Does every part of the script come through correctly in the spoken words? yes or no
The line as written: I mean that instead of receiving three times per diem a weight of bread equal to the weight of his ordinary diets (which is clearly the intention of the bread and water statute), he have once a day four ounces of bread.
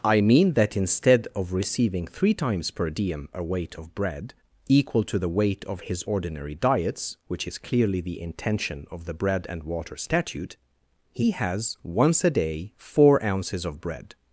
no